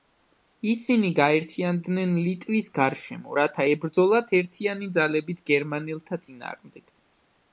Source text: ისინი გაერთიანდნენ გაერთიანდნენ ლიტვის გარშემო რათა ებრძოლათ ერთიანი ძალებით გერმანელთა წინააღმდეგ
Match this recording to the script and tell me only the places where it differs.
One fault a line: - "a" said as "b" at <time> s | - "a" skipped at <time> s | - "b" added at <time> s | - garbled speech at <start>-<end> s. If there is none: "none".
- "გაერთიანდნენ" skipped at 2.1 s